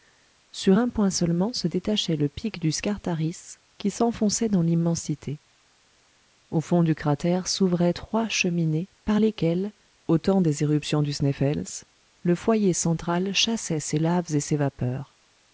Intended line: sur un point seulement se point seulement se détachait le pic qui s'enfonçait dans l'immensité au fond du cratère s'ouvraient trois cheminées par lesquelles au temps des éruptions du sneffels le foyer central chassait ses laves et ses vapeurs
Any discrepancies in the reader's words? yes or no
yes